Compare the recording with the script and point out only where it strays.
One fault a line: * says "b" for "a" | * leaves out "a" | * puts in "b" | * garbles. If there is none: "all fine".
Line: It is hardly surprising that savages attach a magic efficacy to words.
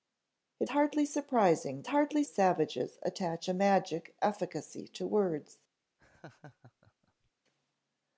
* leaves out "is"
* says "hardly" for "that"